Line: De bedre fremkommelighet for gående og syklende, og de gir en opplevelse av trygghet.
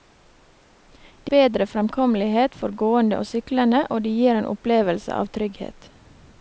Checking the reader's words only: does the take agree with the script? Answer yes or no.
yes